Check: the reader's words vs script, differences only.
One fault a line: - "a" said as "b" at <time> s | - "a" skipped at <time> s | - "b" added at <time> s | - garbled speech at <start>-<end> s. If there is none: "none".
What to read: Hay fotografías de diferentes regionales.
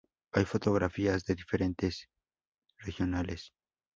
none